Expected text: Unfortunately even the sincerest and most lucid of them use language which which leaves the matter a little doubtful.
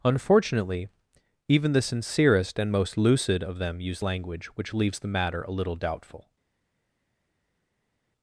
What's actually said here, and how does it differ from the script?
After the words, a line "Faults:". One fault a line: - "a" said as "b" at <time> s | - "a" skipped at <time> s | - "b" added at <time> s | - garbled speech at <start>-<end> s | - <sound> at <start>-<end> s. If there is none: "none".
Unfortunately even the sincerest and most lucid of them use language which leaves the matter a little doubtful.
Faults:
- "which" skipped at 4.7 s